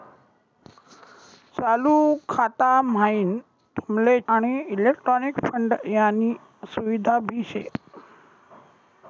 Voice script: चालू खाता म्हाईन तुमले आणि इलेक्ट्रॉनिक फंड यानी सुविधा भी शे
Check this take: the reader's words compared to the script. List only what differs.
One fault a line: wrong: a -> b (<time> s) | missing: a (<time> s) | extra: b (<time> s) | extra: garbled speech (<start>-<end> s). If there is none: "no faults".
no faults